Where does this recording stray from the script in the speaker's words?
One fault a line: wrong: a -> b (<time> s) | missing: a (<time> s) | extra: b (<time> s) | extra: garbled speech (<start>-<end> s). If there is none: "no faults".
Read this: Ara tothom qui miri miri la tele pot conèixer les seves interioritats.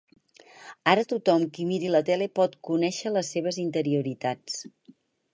missing: miri (1.9 s)